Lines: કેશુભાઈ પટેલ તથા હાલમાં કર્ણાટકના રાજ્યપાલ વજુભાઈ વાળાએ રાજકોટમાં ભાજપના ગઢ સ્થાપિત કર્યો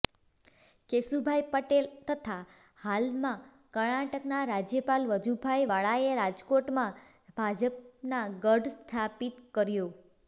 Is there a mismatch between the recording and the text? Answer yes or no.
no